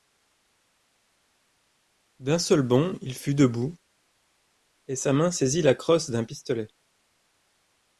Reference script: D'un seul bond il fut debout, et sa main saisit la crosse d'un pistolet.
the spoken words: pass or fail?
pass